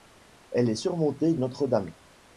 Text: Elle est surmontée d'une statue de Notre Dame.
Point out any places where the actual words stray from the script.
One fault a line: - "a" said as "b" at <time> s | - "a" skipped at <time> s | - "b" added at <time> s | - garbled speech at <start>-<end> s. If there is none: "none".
- "d'une statue de" skipped at 1.4 s